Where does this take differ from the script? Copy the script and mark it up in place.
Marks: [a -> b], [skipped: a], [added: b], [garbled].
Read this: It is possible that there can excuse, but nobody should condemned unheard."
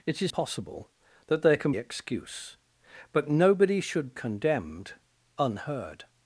It is possible that there can excuse, but nobody should condemned unheard."